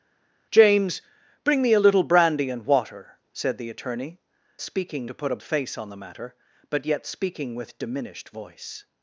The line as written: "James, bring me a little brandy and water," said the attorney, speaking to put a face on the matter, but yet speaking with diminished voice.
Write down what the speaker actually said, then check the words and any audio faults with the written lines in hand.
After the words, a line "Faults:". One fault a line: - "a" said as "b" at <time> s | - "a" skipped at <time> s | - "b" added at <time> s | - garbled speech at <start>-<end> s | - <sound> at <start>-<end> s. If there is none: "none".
"James, bring me a little brandy and water," said the attorney, speaking to put a face on the matter, but yet speaking with diminished voice.
Faults:
none